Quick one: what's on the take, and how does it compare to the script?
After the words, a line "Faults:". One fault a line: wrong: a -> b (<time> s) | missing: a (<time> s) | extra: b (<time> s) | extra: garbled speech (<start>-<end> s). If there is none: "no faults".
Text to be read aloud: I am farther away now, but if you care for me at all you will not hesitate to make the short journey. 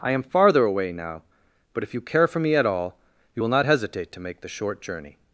I am farther away now, but if you care for me at all you will not hesitate to make the short journey.
Faults:
no faults